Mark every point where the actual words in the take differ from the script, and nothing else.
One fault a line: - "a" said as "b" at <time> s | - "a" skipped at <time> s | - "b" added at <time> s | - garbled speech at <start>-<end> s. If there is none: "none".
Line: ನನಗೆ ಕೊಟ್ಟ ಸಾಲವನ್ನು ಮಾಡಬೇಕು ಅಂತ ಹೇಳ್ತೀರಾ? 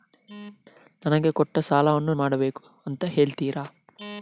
none